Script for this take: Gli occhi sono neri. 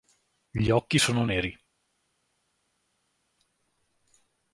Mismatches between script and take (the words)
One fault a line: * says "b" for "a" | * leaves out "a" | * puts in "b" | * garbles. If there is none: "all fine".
all fine